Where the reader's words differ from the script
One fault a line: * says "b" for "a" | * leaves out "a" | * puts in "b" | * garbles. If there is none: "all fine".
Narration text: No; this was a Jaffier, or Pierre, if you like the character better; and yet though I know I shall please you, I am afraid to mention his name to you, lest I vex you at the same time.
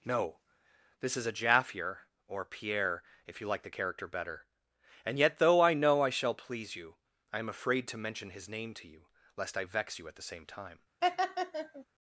* says "is" for "was"